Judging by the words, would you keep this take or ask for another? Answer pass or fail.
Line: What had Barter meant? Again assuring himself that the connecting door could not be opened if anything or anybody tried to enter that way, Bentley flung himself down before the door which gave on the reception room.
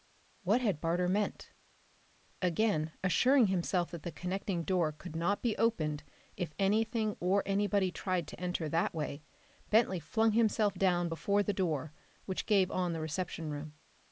pass